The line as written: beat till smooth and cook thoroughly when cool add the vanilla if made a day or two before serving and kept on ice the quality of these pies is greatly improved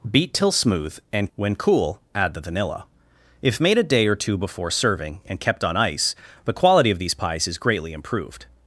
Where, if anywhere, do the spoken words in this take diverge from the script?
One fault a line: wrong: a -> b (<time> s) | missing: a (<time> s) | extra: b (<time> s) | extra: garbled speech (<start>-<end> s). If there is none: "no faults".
missing: cook thoroughly (1.3 s)